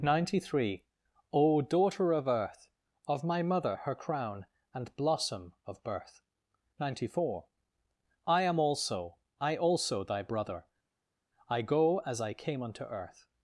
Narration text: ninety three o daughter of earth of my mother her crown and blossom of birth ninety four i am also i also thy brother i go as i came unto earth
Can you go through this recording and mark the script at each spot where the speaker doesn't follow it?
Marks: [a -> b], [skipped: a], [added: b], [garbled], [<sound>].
ninety three o daughter of earth of my mother her crown and blossom of birth ninety four i am also i also thy brother i go as i came unto earth